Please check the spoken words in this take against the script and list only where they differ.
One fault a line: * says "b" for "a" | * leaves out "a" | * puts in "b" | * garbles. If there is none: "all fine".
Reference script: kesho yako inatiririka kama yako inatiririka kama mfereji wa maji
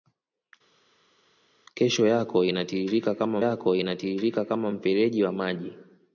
all fine